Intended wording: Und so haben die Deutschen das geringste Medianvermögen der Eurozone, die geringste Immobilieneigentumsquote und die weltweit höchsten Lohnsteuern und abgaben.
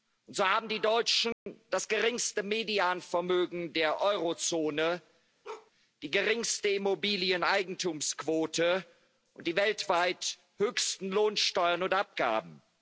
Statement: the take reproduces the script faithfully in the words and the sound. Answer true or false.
false